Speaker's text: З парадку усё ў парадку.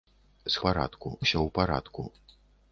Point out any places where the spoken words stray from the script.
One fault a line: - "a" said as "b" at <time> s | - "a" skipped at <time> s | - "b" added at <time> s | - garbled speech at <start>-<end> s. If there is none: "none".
none